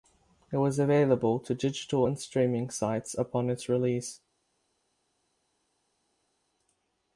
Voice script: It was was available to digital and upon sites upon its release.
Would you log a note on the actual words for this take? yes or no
yes